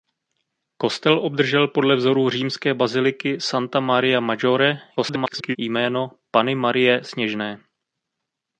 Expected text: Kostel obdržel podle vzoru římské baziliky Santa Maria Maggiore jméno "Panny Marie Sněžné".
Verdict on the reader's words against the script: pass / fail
fail